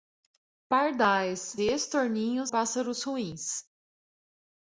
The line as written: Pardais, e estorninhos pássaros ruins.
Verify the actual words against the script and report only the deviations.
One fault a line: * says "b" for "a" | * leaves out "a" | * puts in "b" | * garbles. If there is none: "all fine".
all fine